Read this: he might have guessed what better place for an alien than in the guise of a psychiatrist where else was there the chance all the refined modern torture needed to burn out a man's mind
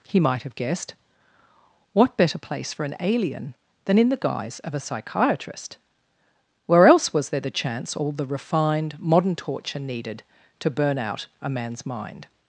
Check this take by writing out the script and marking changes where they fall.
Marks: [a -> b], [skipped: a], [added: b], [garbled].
he might have guessed what better place for an alien than in the guise of a psychiatrist where else was there the chance all the refined modern torture needed to burn out a man's mind